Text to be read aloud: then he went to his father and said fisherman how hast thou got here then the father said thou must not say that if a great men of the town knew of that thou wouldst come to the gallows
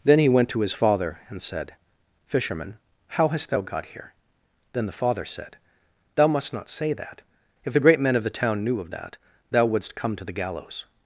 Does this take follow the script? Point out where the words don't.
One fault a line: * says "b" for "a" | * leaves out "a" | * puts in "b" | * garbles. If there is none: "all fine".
* says "the" for "a"